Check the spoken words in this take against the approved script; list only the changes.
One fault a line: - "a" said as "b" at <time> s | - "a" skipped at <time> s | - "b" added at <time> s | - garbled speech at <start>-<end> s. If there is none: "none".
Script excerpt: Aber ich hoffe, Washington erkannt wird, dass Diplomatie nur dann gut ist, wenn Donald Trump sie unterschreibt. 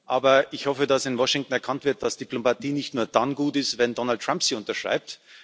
- "dass in" added at 0.9 s
- "nicht" added at 2.7 s